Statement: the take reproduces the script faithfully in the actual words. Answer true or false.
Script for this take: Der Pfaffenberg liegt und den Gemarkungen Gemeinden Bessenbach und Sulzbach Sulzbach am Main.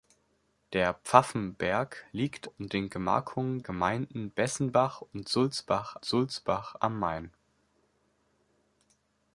true